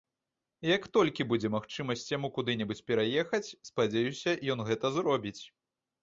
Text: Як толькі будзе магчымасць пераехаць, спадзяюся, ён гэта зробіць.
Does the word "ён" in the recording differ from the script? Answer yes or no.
no